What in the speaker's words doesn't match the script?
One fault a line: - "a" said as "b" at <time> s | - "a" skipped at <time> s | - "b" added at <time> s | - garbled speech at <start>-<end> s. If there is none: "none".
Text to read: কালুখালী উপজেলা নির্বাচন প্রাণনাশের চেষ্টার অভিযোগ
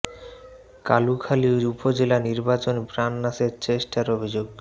none